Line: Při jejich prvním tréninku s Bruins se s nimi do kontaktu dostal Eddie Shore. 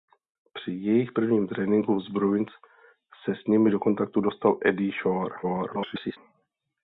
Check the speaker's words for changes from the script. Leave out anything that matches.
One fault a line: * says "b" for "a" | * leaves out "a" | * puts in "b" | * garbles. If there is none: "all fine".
* garbles